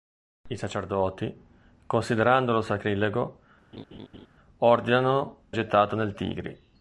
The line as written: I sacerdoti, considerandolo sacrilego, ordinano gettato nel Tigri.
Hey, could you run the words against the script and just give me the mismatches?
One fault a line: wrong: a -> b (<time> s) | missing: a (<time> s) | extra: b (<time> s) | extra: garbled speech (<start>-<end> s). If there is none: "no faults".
no faults